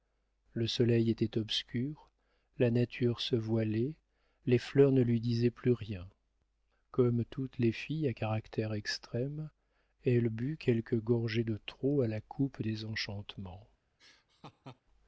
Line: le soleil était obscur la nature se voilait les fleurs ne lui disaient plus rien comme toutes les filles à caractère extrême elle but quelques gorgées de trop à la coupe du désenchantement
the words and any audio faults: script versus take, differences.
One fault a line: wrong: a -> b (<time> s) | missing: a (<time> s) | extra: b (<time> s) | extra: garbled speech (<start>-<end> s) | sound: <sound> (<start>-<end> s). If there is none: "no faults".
missing: du (12.6 s)
sound: laugh (14.0-14.8 s)